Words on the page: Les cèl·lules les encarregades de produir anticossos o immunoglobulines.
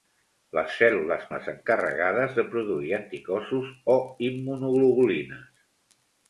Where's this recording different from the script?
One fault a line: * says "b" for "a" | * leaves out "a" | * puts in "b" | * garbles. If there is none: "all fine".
all fine